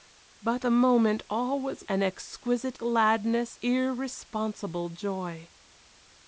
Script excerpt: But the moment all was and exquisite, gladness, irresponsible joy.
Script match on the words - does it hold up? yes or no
yes